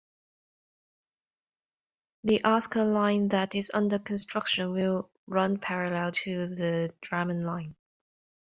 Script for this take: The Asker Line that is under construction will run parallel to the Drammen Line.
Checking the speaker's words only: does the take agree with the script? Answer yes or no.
yes